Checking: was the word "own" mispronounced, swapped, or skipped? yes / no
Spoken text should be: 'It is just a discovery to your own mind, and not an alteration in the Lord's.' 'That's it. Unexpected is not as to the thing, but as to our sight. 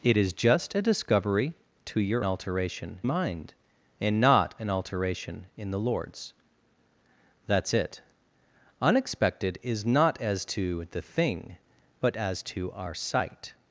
yes